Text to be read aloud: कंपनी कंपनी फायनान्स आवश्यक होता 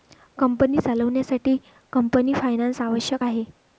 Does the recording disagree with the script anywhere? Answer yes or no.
yes